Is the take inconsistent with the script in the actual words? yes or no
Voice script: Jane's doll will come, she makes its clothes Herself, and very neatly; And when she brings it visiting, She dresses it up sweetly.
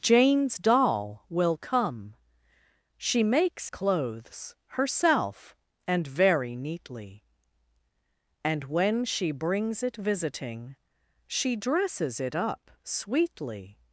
yes